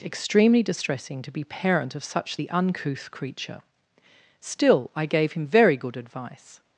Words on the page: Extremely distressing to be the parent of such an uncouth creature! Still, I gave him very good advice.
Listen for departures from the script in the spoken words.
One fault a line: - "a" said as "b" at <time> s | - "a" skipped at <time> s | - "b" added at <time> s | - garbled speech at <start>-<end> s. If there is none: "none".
- "the" skipped at 1.4 s
- "an" said as "the" at 2.3 s